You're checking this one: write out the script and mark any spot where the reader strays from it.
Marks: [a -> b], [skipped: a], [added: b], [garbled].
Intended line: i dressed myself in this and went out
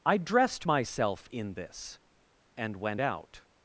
i dressed myself in this and went out